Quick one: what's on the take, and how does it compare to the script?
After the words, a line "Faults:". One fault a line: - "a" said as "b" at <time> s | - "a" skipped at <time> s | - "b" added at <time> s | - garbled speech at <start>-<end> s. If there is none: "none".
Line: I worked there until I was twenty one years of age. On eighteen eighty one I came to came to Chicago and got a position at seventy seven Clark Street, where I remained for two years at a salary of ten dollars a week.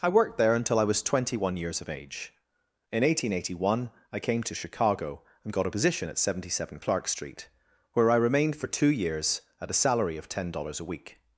I worked there until I was twenty one years of age. In eighteen eighty one I came to Chicago and got a position at seventy seven Clark Street, where I remained for two years at a salary of ten dollars a week.
Faults:
- "On" said as "In" at 2.9 s
- "came to" skipped at 4.5 s